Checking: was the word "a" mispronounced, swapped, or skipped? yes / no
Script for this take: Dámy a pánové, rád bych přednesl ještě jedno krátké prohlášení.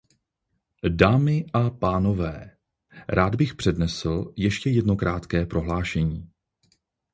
no